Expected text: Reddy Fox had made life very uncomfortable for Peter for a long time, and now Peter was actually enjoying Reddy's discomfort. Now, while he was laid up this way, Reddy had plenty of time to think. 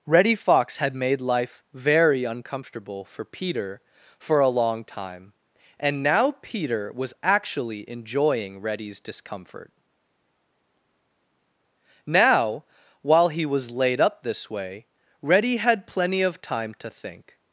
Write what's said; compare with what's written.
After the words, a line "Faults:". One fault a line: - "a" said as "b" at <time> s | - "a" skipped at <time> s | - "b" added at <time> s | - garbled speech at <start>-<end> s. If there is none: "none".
Reddy Fox had made life very uncomfortable for Peter for a long time, and now Peter was actually enjoying Reddy's discomfort. Now, while he was laid up this way, Reddy had plenty of time to think.
Faults:
none